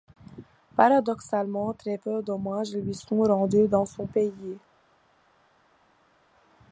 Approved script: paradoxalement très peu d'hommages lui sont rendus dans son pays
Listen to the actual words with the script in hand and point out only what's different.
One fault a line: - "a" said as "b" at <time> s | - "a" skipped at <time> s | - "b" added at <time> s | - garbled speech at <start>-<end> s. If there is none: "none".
none